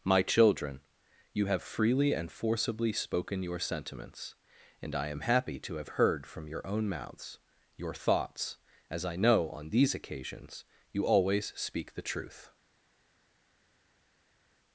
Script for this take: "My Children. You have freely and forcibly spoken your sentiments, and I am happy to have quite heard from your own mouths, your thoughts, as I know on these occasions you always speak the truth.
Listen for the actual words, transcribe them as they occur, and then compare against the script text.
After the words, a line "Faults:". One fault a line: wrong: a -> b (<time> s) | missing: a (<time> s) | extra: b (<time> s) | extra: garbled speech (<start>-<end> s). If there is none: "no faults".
"My Children. You have freely and forcibly spoken your sentiments, and I am happy to have heard from your own mouths, your thoughts, as I know on these occasions you always speak the truth.
Faults:
missing: quite (6.0 s)